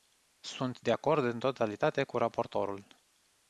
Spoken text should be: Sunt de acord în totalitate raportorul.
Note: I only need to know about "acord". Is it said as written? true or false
true